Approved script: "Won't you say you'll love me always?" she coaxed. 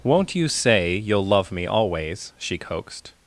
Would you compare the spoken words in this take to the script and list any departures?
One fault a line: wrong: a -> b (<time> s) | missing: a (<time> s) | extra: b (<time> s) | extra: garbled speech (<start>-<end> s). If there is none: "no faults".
no faults